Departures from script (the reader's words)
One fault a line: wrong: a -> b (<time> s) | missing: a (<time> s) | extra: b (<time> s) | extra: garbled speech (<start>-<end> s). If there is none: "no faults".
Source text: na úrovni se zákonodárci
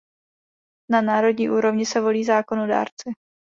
extra: národní (1.0 s)
extra: volí (2.0 s)